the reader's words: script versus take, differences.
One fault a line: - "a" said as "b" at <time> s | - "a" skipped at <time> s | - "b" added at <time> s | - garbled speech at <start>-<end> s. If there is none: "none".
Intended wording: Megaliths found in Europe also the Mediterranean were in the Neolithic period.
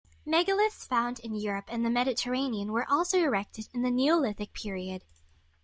- "also" said as "and" at 1.7 s
- "also erected" added at 2.9 s